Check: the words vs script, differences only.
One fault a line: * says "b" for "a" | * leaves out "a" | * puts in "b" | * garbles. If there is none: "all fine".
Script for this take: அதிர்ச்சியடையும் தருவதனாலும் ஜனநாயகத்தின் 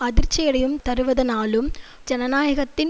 all fine